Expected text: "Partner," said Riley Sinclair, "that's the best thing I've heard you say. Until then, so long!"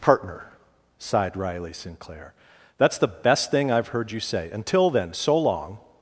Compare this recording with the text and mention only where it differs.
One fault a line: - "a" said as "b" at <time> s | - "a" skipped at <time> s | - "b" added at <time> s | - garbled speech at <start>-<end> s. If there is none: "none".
- "said" said as "sighed" at 1.0 s